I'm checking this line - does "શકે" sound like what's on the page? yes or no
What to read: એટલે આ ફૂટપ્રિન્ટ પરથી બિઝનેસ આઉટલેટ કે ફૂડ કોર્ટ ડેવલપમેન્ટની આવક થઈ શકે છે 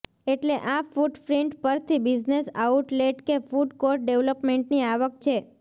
no